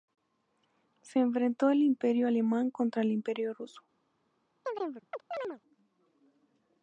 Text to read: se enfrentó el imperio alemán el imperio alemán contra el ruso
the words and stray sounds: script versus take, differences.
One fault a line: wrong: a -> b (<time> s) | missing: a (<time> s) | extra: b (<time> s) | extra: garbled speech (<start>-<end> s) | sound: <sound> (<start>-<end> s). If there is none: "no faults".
extra: contra (2.7 s)
missing: alemán contra el (3.5 s)
sound: chirp (4.6-5.6 s)